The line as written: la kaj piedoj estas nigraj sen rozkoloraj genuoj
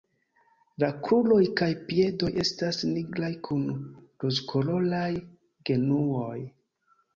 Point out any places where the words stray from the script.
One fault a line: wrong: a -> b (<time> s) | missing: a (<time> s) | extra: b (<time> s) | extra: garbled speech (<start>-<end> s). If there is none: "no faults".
extra: kruroj (1.1 s)
wrong: sen -> kun (3.5 s)